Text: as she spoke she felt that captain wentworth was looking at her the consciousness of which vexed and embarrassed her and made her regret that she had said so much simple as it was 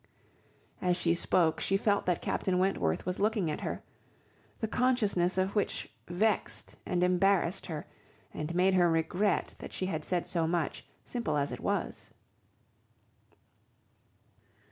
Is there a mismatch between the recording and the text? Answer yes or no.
no